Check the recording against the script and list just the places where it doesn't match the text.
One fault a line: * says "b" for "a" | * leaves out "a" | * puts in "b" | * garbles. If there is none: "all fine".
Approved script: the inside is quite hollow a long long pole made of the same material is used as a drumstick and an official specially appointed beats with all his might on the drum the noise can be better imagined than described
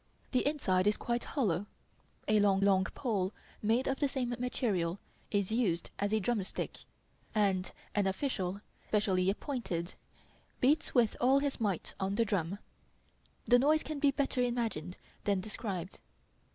all fine